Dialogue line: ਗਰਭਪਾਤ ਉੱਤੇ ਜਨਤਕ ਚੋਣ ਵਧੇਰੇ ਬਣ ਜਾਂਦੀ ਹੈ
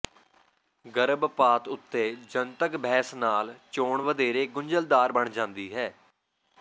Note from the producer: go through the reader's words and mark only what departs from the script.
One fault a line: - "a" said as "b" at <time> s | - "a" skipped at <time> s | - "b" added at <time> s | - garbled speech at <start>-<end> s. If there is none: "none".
- "ਬਹਿਸ ਨਾਲ" added at 2.8 s
- "ਗੁੰਝਲਦਾਰ" added at 4.5 s